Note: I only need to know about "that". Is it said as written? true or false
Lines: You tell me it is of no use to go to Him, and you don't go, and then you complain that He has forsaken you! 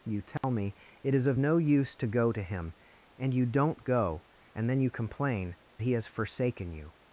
false